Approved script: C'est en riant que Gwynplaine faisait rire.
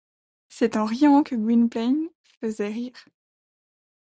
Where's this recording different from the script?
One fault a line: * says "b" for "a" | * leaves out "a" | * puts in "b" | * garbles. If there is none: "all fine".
all fine